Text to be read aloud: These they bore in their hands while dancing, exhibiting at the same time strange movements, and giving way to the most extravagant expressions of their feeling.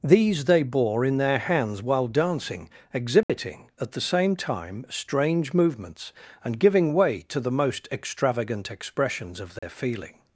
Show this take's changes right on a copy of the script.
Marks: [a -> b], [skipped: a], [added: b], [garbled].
These they bore in their hands while dancing, exhibiting at the same time strange movements, and giving way to the most extravagant expressions of their feeling.